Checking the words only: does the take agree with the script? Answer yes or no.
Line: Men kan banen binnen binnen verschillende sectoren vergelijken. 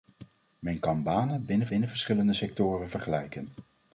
yes